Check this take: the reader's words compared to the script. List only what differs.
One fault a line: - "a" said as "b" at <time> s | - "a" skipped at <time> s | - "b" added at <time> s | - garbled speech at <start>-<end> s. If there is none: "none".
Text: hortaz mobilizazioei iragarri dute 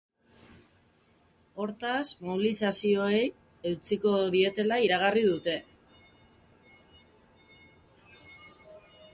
- "eutsiko dietela" added at 3.7 s